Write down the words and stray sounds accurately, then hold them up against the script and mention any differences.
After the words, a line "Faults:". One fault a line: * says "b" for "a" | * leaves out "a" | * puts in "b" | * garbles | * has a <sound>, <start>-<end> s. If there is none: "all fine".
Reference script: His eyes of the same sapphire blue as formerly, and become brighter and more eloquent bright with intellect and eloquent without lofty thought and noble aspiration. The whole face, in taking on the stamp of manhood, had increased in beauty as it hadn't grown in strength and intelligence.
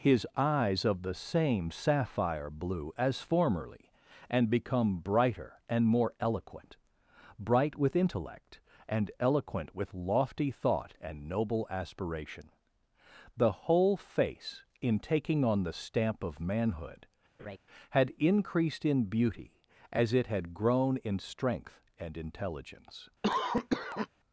His eyes of the same sapphire blue as formerly, and become brighter and more eloquent bright with intellect and eloquent with lofty thought and noble aspiration. The whole face, in taking on the stamp of manhood, had increased in beauty as it had grown in strength and intelligence.
Faults:
* says "with" for "without"
* has a laugh, 17.4-17.6 s
* says "had" for "hadn't"
* has a cough, 23.2-24.1 s